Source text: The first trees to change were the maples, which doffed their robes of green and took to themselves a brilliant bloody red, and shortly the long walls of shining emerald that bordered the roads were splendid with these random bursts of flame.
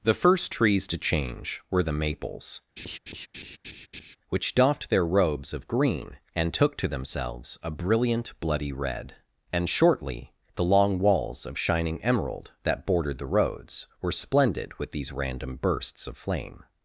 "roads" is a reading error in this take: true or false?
false